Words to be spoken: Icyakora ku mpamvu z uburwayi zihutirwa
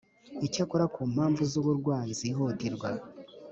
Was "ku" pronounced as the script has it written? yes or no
yes